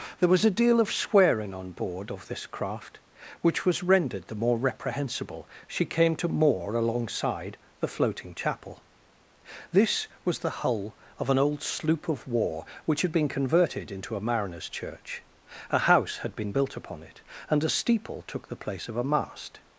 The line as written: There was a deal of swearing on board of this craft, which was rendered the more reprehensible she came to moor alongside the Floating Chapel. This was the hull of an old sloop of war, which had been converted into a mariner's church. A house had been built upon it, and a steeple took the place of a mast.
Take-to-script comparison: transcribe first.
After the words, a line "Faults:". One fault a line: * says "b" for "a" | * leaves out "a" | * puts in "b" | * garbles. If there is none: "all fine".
There was a deal of swearing on board of this craft, which was rendered the more reprehensible she came to moor alongside the Floating Chapel. This was the hull of an old sloop of war, which had been converted into a mariner's church. A house had been built upon it, and a steeple took the place of a mast.
Faults:
all fine